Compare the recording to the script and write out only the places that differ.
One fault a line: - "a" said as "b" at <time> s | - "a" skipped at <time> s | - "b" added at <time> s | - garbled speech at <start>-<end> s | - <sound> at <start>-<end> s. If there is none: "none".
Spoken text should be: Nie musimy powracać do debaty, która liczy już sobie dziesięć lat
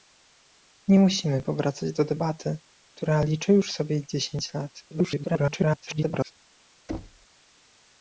- garbled speech at 4.9-6.4 s
- thud at 6.9-7.3 s